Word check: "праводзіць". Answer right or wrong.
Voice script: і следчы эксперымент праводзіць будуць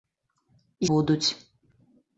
wrong